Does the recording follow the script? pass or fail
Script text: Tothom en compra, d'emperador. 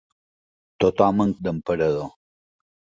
fail